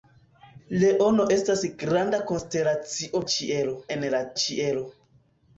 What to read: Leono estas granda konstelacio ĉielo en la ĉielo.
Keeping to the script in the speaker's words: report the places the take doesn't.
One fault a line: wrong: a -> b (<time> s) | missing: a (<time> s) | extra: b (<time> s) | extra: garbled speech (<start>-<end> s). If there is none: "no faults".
no faults